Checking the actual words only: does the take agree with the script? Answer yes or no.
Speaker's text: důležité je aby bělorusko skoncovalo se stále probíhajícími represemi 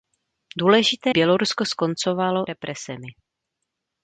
no